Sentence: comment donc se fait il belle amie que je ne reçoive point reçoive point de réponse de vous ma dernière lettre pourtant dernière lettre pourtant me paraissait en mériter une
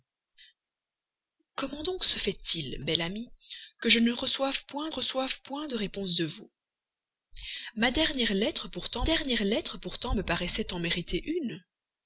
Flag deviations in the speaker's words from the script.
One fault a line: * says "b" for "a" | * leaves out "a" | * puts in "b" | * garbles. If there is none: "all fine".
all fine